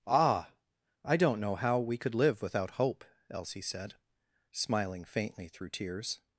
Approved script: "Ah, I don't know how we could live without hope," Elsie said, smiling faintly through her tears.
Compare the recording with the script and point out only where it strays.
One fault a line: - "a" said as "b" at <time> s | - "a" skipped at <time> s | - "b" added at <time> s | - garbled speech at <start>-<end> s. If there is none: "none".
- "her" skipped at 5.7 s